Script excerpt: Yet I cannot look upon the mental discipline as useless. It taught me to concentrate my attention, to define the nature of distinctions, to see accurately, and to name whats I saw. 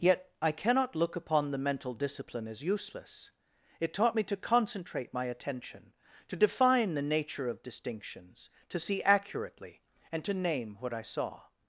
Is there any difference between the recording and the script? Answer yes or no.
yes